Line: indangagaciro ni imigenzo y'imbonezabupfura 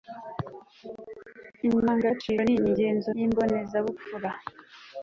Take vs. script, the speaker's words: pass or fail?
pass